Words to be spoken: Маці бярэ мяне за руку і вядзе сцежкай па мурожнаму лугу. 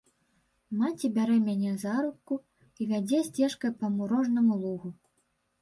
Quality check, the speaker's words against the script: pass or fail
pass